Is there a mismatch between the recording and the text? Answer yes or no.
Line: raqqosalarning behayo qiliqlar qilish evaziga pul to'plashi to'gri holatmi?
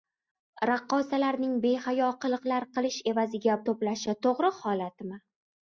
yes